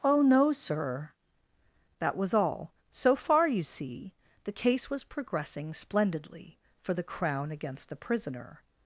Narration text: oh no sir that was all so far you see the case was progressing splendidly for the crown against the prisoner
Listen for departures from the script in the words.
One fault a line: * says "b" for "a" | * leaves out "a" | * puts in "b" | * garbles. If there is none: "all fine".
all fine